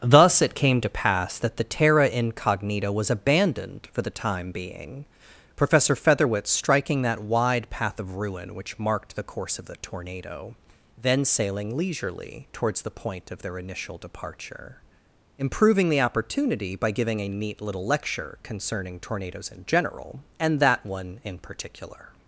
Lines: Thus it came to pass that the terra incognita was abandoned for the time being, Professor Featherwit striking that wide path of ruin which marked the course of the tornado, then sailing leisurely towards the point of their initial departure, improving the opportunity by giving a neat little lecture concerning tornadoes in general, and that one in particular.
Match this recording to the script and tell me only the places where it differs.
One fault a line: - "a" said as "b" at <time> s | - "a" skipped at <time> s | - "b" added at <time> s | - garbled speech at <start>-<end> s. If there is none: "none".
none